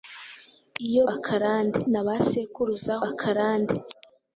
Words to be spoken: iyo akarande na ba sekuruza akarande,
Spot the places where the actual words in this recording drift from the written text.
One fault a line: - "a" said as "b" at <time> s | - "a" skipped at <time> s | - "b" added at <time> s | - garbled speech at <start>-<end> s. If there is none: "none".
none